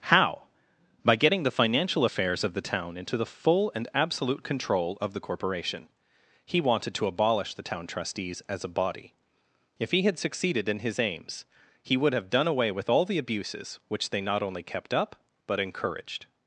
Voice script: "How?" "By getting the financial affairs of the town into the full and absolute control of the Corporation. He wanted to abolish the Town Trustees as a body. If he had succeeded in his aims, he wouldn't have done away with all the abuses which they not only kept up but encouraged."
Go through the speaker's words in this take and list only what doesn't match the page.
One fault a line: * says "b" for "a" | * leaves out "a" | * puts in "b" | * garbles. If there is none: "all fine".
* says "would" for "wouldn't"